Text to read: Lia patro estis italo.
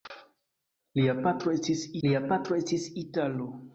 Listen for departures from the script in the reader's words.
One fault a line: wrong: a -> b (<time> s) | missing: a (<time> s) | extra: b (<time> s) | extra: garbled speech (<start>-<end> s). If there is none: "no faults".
extra: lia patro estis (2.1 s)